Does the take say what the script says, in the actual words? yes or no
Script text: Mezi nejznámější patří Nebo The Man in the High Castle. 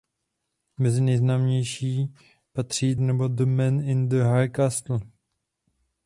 yes